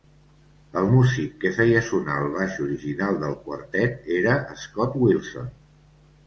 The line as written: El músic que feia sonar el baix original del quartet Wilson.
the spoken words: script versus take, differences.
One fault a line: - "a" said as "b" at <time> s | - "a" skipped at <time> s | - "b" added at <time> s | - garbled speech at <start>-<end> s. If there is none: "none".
- "era Scott" added at 4.2 s